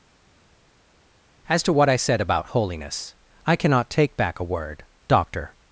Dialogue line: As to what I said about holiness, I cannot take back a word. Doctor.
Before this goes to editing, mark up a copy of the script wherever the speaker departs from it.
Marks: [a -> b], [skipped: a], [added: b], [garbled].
As to what I said about holiness, I cannot take back a word. Doctor.